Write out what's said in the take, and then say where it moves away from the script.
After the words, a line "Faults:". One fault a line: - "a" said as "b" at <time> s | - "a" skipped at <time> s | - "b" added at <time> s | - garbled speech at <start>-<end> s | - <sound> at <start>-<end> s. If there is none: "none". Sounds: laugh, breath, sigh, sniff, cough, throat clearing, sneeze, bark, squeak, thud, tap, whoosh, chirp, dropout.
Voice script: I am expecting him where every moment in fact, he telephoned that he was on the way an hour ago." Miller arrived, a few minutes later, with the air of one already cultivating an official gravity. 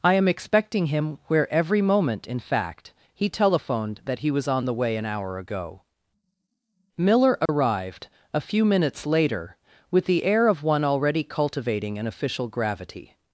I am expecting him where every moment in fact, he telephoned that he was on the way an hour ago." Miller arrived, a few minutes later, with the air of one already cultivating an official gravity.
Faults:
- dropout at 7.5-7.5 s